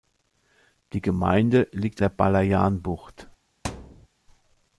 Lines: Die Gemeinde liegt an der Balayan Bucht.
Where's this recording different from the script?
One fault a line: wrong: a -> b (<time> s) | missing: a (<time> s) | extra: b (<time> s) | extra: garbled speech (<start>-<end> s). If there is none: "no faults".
missing: an (2.0 s)